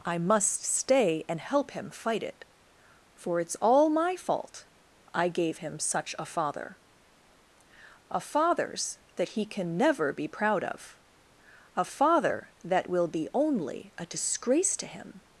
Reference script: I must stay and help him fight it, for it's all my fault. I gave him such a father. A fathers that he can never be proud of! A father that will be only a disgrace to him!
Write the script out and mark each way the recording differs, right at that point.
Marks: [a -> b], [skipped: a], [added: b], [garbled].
I must stay and help him fight it, for it's all my fault. I gave him such a father. A fathers that he can never be proud of! A father that will be only a disgrace to him!